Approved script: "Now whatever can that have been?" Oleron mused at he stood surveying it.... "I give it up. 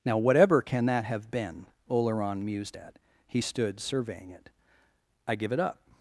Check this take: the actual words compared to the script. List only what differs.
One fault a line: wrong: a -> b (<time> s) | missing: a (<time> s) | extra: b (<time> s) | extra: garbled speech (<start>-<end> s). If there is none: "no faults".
no faults